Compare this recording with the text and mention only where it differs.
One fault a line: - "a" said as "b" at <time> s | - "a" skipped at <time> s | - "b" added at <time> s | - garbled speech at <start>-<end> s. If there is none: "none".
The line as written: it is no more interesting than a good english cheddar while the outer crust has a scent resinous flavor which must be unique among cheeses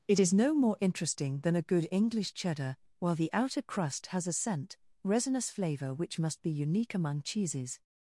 none